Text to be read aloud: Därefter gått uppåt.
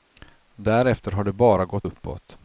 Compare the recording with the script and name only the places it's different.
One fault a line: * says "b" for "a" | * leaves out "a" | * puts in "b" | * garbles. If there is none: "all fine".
* puts in "har det bara"